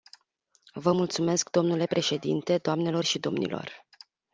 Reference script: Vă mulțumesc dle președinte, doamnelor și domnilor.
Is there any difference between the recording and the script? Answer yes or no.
no